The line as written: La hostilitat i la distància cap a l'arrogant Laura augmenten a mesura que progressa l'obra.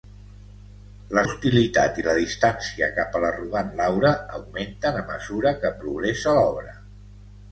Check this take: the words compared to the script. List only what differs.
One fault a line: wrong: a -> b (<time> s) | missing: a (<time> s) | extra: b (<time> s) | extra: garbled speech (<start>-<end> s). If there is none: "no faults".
no faults